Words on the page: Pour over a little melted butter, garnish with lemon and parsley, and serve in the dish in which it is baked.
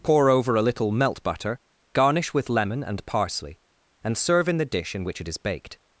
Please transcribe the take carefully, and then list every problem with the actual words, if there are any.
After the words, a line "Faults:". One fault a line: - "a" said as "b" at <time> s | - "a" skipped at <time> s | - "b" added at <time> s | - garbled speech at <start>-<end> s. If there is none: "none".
Pour over a little melt butter, garnish with lemon and parsley, and serve in the dish in which it is baked.
Faults:
- "melted" said as "melt" at 0.9 s